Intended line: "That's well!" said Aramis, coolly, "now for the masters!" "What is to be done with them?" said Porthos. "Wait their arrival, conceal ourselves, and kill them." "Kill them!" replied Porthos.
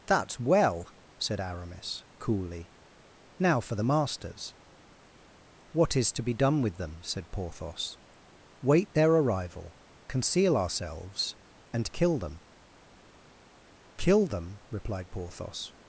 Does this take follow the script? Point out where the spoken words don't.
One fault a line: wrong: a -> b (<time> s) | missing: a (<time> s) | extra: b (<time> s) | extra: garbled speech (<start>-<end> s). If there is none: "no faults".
no faults